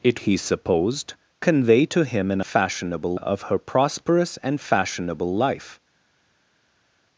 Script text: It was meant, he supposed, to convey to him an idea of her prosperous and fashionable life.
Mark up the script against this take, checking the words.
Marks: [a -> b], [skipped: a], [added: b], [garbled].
It [skipped: was meant,] he supposed, [skipped: to] convey to him an [idea -> fashionable] of her prosperous and fashionable life.